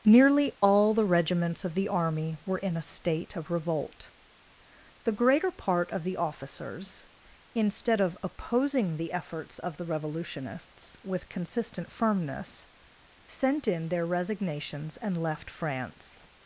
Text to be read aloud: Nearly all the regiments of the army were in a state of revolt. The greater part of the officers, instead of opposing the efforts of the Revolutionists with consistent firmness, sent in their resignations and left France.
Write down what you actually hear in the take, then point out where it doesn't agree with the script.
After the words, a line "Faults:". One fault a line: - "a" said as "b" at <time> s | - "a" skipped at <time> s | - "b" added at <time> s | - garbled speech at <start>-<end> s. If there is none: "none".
Nearly all the regiments of the army were in a state of revolt. The greater part of the officers, instead of opposing the efforts of the Revolutionists with consistent firmness, sent in their resignations and left France.
Faults:
none